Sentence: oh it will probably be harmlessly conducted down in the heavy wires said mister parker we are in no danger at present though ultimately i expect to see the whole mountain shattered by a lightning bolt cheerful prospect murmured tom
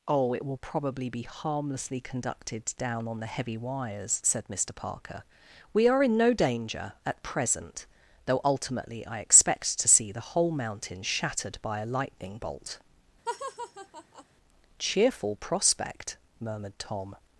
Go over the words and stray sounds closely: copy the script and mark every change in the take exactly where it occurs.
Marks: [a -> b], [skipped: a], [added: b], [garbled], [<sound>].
oh it will probably be harmlessly conducted down [in -> on] the heavy wires said mister parker we are in no danger at present though ultimately i expect to see the whole mountain shattered by a lightning bolt [laugh] cheerful prospect murmured tom